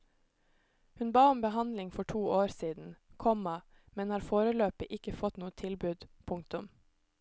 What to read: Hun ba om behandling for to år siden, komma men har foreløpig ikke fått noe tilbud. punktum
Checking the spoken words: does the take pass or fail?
pass